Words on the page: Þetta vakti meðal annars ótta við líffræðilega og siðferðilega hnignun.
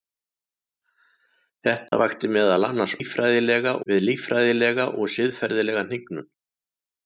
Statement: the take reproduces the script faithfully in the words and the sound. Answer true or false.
false